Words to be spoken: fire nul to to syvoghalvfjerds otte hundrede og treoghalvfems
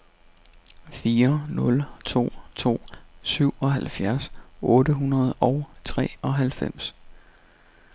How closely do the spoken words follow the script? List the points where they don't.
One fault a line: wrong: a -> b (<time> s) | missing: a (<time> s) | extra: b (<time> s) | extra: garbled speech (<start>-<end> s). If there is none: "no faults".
no faults